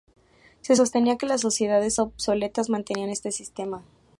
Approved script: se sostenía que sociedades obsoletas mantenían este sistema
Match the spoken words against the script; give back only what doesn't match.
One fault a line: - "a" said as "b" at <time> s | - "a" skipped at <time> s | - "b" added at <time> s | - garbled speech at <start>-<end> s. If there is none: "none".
- "las" added at 1.3 s